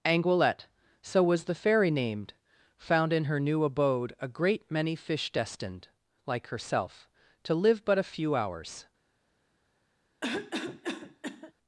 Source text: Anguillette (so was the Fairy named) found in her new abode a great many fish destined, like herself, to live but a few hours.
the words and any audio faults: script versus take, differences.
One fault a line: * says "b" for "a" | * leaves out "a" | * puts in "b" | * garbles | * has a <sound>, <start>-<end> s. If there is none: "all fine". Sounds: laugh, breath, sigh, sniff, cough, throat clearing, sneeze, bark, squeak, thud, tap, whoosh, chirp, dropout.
* has a cough, 10.2-11.5 s